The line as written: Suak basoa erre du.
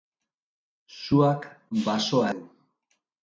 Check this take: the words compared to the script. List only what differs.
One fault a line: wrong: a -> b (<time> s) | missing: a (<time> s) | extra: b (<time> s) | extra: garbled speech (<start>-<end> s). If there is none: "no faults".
missing: erre (2.3 s)